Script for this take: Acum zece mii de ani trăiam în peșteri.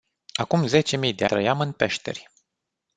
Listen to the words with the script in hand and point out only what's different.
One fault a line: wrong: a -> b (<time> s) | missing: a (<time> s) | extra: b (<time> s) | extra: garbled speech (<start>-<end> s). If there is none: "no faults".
missing: ani (1.2 s)